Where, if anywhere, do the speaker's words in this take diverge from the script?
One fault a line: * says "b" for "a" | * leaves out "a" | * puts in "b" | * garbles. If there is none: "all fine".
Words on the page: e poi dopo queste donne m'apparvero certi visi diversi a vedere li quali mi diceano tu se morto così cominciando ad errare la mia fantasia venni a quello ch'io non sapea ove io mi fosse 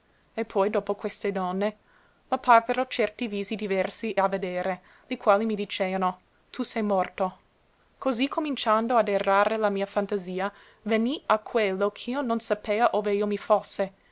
all fine